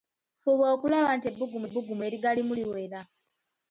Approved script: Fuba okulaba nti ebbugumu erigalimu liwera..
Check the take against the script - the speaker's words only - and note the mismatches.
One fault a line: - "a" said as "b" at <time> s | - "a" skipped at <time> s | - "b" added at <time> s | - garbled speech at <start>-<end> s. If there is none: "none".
- "ebbugumu" added at 1.7 s